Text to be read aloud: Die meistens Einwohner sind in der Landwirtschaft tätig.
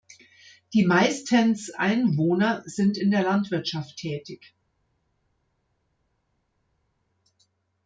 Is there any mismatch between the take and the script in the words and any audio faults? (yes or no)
no